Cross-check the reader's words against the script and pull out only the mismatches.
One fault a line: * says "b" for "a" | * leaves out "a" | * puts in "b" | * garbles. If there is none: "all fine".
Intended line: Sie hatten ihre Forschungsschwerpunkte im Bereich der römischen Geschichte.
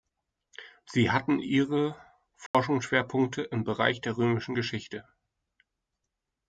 all fine